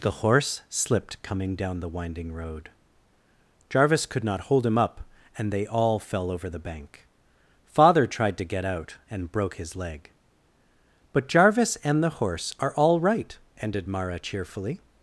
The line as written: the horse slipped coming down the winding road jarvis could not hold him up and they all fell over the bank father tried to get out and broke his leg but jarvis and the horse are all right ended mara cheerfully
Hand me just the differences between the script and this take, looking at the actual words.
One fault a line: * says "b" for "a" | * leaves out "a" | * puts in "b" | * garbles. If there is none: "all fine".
all fine